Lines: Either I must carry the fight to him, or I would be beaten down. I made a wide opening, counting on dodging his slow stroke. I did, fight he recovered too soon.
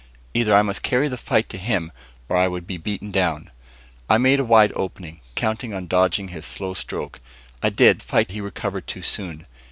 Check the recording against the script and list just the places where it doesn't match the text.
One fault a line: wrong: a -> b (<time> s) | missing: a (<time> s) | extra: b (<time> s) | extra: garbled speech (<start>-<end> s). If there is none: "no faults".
no faults